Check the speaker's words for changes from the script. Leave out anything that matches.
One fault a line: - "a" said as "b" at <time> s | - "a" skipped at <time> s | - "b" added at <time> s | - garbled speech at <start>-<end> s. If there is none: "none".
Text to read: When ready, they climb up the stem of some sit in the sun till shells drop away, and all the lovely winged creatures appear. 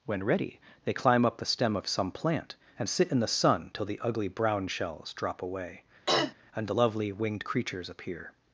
- "plant and" added at 2.1 s
- "the ugly brown" added at 3.8 s
- "all" skipped at 6.7 s